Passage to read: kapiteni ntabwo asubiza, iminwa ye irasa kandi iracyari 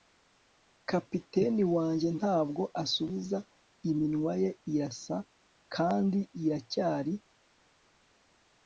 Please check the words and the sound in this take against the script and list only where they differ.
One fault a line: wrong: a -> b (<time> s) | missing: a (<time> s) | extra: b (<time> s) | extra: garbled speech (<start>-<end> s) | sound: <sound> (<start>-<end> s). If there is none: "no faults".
extra: wanjye (1.8 s)